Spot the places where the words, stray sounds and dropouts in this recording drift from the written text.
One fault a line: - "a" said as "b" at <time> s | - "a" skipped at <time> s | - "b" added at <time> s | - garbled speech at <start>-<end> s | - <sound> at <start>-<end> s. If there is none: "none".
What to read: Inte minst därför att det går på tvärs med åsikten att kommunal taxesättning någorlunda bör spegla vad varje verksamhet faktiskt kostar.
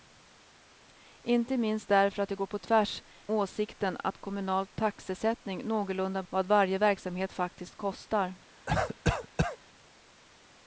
- "med" skipped at 3.0 s
- "bör spegla" skipped at 6.2 s
- cough at 8.7-9.6 s